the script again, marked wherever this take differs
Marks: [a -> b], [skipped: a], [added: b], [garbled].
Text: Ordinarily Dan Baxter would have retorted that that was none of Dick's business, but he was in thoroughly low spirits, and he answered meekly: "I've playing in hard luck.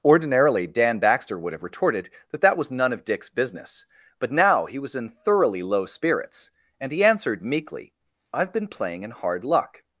Ordinarily Dan Baxter would have retorted that that was none of Dick's business, but [added: now] he was in thoroughly low spirits, and he answered meekly: "I've [added: been] playing in hard luck.